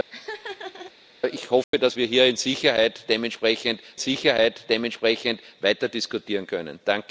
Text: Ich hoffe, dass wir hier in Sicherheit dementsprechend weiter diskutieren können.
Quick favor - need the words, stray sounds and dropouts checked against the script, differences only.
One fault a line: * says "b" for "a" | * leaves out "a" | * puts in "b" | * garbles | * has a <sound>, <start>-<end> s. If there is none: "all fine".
* has a laugh, 0.1-0.9 s
* has a dropout, 1.6-1.7 s
* puts in "Sicherheit dementsprechend"